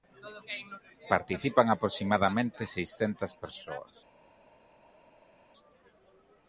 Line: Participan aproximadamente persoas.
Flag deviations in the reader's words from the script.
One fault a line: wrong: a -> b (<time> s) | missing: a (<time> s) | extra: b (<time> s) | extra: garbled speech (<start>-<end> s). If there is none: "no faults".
extra: seiscentas (2.7 s)